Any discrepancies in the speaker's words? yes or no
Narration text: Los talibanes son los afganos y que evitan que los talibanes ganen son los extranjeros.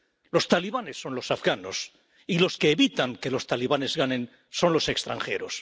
yes